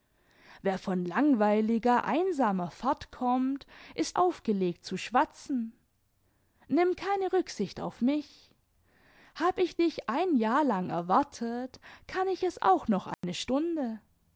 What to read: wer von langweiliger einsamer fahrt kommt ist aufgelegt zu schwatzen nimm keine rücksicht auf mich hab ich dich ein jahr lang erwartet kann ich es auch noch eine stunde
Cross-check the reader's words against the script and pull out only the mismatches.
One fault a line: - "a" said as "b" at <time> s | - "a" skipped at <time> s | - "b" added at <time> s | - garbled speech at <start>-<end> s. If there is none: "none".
none